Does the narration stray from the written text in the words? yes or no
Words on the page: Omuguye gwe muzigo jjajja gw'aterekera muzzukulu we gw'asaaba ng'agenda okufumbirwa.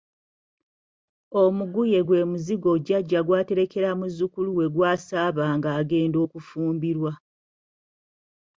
no